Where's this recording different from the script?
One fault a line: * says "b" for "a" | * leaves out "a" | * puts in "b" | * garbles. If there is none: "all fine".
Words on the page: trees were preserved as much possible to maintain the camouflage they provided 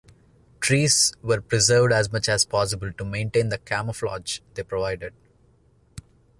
* puts in "as"